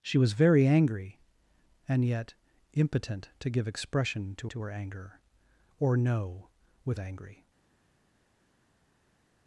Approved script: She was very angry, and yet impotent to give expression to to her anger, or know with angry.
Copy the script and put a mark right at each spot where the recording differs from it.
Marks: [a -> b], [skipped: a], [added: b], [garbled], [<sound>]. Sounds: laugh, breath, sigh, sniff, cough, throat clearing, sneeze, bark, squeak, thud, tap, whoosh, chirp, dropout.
She was very angry, and yet impotent to give expression to to her anger, or know with angry.